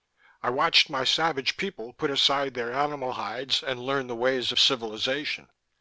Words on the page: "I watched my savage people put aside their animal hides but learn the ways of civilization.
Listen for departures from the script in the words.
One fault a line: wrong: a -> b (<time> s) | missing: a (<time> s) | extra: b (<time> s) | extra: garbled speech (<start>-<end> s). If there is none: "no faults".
wrong: but -> and (3.6 s)